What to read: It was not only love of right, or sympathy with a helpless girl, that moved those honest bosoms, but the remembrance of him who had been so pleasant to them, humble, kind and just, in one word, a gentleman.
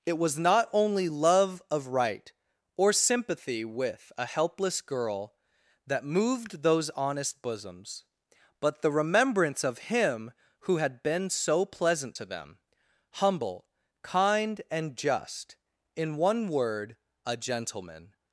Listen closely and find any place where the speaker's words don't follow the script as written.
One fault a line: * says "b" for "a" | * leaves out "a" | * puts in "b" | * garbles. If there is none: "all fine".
all fine